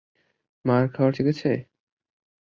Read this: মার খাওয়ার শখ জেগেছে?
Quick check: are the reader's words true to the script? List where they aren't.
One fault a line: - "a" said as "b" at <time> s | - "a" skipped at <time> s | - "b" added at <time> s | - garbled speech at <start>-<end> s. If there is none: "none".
- "শখ" skipped at 1.1 s